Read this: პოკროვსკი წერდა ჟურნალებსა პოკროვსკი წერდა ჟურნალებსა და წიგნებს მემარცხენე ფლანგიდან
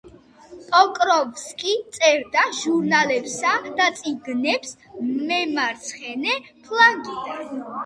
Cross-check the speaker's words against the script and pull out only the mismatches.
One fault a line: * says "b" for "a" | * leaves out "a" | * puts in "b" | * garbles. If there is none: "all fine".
* leaves out "პოკროვსკი წერდა ჟურნალებსა"